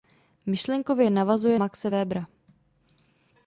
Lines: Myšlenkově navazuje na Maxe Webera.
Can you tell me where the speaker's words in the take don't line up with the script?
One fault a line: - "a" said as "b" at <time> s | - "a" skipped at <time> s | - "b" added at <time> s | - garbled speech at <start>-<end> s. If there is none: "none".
- "na" skipped at 1.6 s